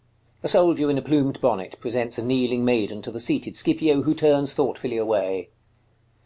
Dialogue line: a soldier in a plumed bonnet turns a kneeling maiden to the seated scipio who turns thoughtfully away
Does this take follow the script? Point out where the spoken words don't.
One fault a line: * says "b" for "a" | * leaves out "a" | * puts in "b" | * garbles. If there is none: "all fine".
* says "presents" for "turns"